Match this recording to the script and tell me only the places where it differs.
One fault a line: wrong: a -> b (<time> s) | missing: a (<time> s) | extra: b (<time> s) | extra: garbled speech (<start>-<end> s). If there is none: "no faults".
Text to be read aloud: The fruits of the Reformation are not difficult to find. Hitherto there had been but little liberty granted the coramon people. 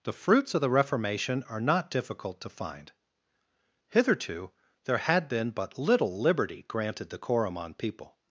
no faults